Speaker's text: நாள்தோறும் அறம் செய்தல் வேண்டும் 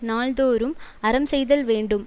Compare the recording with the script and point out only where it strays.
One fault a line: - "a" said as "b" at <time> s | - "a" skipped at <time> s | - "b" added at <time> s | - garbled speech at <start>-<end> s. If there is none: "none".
none